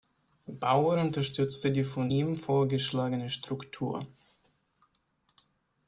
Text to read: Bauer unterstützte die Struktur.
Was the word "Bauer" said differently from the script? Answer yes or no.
no